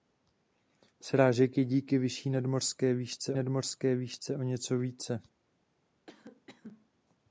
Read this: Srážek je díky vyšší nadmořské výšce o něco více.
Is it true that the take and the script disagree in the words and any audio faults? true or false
true